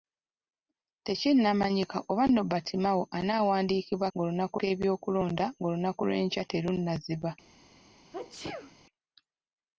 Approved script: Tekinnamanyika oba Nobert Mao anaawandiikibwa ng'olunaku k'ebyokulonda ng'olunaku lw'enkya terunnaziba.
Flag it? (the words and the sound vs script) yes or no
yes